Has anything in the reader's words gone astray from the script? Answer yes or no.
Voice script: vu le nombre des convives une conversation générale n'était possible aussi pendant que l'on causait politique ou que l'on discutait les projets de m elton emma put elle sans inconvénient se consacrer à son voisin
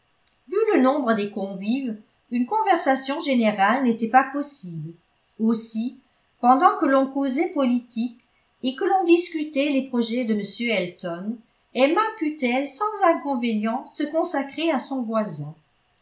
yes